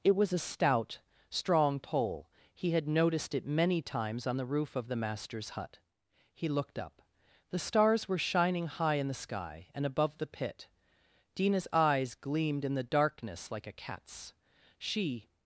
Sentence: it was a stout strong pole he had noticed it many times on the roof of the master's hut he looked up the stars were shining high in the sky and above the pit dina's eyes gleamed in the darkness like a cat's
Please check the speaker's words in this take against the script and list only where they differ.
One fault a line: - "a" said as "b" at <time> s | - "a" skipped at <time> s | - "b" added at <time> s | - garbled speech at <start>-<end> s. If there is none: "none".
- "she" added at 14.8 s